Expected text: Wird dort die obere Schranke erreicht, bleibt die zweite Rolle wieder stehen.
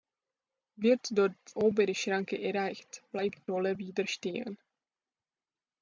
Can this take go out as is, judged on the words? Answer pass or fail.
fail